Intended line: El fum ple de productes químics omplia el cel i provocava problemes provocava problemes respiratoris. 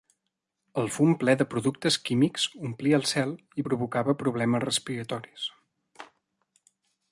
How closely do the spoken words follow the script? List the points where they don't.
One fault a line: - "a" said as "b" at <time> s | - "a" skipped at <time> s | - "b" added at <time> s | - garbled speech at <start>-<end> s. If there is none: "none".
- "provocava problemes" skipped at 4.6 s